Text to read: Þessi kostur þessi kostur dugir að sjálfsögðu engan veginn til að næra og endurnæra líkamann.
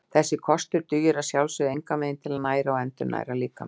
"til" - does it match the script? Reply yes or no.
yes